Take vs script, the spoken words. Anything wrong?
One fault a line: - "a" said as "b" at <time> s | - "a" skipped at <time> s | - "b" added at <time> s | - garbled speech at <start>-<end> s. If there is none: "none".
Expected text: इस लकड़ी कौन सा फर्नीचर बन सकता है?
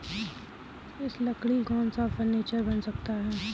none